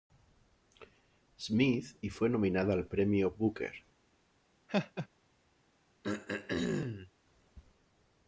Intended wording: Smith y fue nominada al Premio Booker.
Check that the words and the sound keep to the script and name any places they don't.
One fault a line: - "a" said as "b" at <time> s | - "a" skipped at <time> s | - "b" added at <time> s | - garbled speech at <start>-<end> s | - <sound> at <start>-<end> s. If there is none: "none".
- laugh at 4.7-5.1 s
- throat clearing at 6.0-7.1 s